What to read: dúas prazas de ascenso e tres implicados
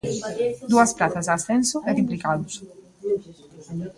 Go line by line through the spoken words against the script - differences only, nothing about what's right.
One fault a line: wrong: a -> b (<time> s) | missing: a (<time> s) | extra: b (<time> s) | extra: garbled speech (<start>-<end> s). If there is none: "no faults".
missing: tres (1.9 s)